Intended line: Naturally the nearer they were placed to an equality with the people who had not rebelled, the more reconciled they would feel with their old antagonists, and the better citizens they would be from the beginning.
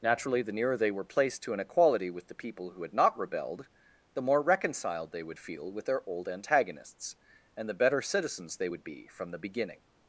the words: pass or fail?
pass